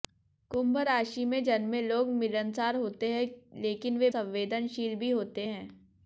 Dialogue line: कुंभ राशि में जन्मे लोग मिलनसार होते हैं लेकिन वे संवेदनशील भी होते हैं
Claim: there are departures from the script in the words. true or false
false